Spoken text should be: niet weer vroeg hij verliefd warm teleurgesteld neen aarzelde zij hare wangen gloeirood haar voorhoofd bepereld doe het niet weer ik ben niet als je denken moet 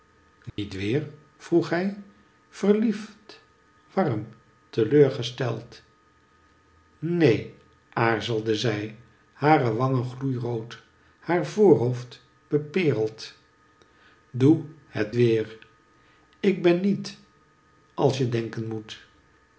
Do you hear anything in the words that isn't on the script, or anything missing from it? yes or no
yes